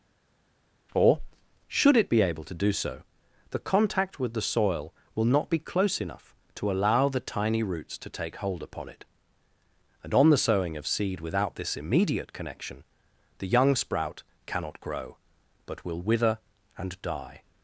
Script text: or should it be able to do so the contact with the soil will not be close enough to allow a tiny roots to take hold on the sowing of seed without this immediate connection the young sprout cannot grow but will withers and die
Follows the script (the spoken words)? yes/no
no